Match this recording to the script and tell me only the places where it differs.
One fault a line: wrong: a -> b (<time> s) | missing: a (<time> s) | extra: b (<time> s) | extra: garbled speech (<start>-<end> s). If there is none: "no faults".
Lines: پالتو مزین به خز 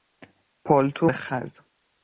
missing: مزین (1.1 s)